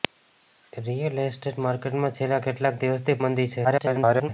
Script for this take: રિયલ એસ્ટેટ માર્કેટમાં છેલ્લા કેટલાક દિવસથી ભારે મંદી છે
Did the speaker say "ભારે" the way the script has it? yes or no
no